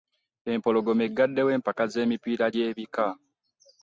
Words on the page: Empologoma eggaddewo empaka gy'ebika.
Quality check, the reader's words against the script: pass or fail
fail